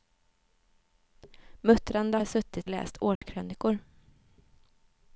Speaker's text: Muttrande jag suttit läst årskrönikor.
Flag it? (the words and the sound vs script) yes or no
yes